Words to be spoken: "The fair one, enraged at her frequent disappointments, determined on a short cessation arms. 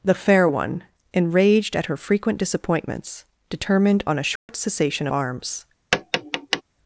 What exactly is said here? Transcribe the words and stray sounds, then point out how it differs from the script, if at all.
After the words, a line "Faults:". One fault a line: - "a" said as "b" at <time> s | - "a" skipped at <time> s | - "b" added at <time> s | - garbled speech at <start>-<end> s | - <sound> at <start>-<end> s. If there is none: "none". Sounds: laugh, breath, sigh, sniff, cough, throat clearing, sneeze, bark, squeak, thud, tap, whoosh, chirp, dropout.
"The fair one, enraged at her frequent disappointments, determined on a short cessation arms.
Faults:
- dropout at 4.4-4.5 s
- tap at 5.9-6.6 s